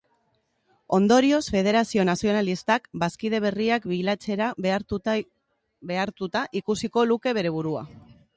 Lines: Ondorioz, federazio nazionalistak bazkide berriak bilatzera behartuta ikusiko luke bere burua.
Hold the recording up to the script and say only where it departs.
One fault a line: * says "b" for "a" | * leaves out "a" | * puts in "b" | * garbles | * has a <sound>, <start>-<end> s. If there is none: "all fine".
all fine